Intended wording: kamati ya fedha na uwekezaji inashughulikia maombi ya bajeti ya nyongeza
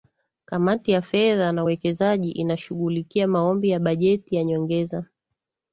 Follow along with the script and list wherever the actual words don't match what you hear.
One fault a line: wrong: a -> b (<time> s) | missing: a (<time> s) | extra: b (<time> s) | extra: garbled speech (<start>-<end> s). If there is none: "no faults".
no faults